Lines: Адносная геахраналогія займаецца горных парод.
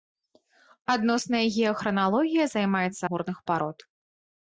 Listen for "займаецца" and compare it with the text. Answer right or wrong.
right